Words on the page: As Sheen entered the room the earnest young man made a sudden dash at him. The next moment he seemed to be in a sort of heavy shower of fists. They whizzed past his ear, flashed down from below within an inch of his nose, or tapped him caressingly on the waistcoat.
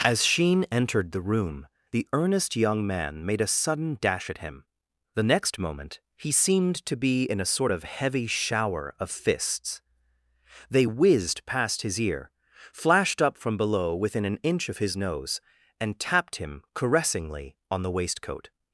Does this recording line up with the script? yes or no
no